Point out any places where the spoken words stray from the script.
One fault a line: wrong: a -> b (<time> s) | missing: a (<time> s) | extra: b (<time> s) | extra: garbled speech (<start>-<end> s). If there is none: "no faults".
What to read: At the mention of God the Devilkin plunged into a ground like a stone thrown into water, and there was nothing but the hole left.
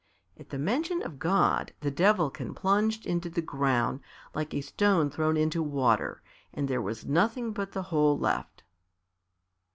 wrong: a -> the (3.3 s)